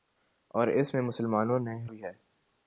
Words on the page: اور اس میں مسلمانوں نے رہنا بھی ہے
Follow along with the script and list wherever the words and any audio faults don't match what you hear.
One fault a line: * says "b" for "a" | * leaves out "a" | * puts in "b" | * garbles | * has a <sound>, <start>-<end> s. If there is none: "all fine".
* leaves out "رہنا"